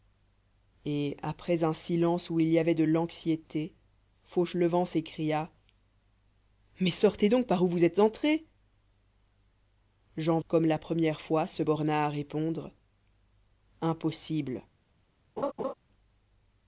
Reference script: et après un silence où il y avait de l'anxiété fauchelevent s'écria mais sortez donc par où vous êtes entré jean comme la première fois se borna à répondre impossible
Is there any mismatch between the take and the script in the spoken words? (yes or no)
no